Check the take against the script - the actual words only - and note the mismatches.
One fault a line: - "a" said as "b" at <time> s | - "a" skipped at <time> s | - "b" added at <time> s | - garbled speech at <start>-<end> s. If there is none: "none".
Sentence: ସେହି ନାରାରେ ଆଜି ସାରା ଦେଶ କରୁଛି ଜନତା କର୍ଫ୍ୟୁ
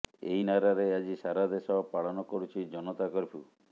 - "ସେହି" said as "ଏହି" at 0.3 s
- "ପାଳନ" added at 1.9 s